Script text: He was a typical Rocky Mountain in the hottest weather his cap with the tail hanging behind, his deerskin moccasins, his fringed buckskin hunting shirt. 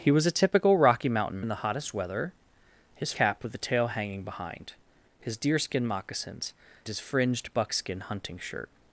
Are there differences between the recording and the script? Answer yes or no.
no